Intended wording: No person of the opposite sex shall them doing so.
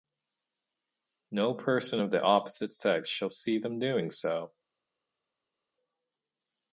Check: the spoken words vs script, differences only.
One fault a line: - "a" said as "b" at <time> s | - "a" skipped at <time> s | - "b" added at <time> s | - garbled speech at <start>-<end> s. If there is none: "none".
- "see" added at 3.3 s